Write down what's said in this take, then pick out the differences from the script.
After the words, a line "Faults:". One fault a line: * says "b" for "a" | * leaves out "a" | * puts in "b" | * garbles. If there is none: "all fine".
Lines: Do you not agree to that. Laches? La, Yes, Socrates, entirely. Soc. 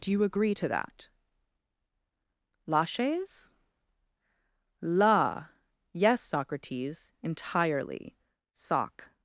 Do you agree to that. Laches? La, Yes, Socrates, entirely. Soc.
Faults:
* leaves out "not"